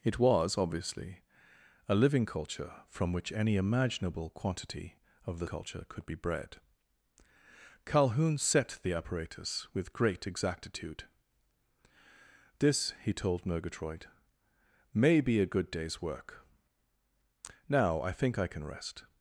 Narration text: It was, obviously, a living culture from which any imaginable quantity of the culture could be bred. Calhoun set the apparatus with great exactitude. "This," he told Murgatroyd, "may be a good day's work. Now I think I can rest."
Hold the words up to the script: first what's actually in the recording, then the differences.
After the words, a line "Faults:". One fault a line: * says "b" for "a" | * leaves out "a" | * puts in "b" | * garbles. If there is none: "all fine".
It was, obviously, a living culture from which any imaginable quantity of the culture could be bred. Calhoun set the apparatus with great exactitude. "This," he told Murgatroyd, "may be a good day's work. Now I think I can rest."
Faults:
all fine